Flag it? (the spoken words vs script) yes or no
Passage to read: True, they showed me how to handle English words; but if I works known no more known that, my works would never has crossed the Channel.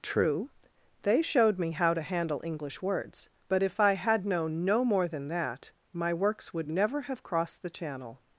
yes